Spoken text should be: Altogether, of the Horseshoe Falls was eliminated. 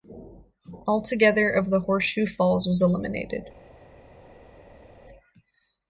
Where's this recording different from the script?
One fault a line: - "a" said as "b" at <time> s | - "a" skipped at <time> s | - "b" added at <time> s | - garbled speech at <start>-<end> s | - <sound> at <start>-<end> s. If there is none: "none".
none